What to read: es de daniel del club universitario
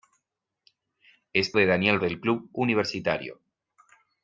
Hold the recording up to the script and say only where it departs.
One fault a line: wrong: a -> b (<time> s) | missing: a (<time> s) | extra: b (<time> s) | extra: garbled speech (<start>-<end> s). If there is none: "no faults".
no faults